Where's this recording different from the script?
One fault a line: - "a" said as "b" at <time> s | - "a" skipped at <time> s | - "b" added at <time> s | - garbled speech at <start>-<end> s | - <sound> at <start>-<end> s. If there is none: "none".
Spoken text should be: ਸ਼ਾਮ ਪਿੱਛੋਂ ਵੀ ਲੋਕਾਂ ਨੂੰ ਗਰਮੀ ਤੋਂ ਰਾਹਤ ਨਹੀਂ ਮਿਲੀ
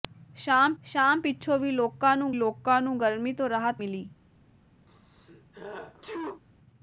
- "ਸ਼ਾਮ" added at 0.8 s
- "ਲੋਕਾਂ ਨੂੰ" added at 2.3 s
- "ਨਹੀਂ" skipped at 3.8 s
- sneeze at 4.9-6.4 s